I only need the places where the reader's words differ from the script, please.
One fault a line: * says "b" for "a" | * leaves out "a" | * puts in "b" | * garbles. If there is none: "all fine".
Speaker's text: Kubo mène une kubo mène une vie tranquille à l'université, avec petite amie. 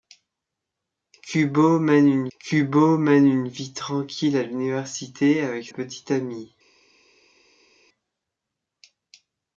all fine